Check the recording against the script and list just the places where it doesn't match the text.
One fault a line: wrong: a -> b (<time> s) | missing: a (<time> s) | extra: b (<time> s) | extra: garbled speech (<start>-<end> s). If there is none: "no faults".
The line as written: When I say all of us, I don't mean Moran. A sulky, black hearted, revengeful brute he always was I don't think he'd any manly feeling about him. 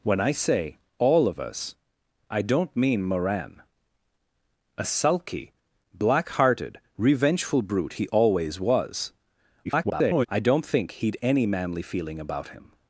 extra: garbled speech (9.6-10.3 s)